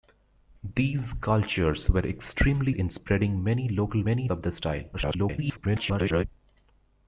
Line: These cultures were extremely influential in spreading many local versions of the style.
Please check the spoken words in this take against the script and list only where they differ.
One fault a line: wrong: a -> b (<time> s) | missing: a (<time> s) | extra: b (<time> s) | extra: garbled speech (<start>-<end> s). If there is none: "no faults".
missing: influential (2.8 s)
wrong: versions -> many (4.0 s)
extra: garbled speech (4.9-6.2 s)